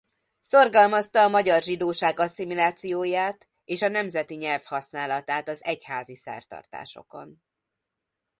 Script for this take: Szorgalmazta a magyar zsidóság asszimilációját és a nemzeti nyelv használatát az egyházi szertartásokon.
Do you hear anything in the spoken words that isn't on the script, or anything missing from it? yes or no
no